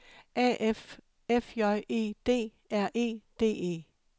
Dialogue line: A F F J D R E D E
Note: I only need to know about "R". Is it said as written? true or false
true